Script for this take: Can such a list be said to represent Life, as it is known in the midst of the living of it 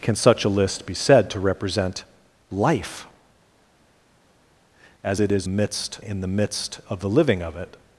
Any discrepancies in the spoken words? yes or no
yes